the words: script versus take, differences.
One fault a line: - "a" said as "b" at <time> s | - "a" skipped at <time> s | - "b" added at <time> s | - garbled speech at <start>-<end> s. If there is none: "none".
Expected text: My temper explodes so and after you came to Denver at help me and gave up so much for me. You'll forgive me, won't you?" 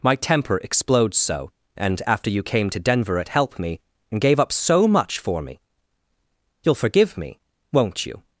none